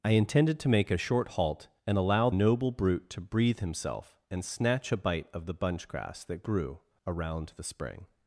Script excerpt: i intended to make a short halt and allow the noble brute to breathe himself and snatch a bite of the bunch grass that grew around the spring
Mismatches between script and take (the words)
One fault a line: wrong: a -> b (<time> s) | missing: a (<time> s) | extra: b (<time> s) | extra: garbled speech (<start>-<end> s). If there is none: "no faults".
missing: the (2.3 s)